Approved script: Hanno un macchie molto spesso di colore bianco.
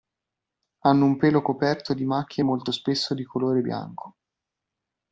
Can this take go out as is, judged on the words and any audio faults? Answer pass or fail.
fail